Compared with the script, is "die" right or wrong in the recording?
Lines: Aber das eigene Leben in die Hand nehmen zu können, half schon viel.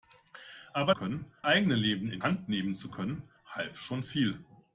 wrong